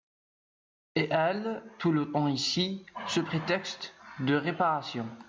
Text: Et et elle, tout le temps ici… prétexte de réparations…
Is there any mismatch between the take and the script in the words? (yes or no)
yes